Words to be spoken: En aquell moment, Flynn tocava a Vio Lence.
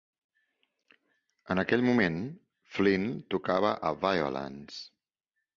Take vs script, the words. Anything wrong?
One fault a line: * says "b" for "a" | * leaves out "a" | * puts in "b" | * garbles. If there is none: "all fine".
all fine